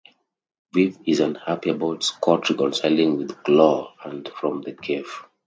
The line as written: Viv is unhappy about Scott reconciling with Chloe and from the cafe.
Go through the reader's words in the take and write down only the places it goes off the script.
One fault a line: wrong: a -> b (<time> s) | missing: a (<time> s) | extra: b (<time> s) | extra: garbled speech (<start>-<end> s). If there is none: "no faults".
no faults